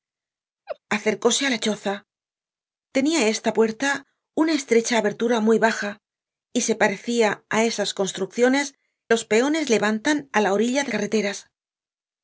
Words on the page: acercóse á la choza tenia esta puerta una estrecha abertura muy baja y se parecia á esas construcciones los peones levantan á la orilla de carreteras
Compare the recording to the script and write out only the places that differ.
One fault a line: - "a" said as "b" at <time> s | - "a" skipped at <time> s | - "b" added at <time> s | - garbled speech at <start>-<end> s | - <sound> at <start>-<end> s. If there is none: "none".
- laugh at 0.7-0.8 s